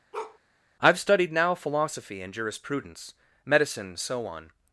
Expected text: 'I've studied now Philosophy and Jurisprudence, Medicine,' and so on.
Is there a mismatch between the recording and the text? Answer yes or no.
yes